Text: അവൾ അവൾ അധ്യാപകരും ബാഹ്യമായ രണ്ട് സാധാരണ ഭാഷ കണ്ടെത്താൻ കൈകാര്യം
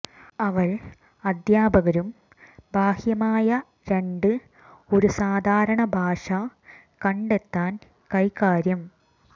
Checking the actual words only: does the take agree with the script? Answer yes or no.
no